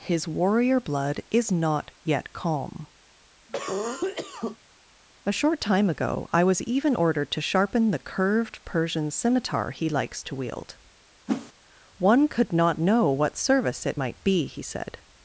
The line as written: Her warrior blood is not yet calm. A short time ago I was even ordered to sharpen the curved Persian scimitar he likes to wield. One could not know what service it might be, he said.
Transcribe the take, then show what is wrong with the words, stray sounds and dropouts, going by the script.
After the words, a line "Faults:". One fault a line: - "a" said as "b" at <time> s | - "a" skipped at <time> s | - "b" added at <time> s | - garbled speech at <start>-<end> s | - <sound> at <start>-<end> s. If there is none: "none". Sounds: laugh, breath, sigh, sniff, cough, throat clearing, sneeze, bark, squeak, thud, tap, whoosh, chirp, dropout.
His warrior blood is not yet calm. A short time ago I was even ordered to sharpen the curved Persian scimitar he likes to wield. One could not know what service it might be, he said.
Faults:
- "Her" said as "His" at 0.0 s
- cough at 3.5-4.6 s
- whoosh at 11.3-11.5 s